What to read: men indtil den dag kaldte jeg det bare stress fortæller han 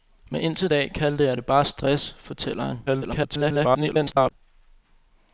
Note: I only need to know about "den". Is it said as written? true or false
false